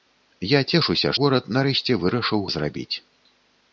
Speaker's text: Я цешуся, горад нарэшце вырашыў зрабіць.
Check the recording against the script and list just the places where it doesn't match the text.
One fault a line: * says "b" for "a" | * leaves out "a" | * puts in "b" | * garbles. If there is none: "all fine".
all fine